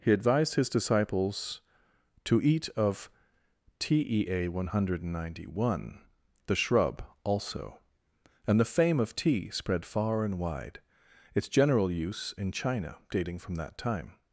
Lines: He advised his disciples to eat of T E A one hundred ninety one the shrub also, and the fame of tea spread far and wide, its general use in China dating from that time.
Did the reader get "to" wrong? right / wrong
right